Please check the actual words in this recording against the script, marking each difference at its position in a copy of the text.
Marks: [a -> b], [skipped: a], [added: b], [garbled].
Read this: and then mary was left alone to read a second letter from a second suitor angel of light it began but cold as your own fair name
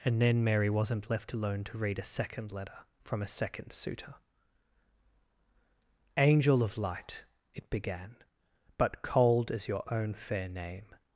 and then mary [was -> wasn't] left alone to read a second letter from a second suitor angel of light it began but cold as your own fair name